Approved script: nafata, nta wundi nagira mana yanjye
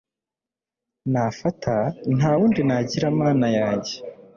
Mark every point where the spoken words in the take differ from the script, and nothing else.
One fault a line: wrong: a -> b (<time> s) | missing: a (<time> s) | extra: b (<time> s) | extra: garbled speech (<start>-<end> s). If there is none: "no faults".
no faults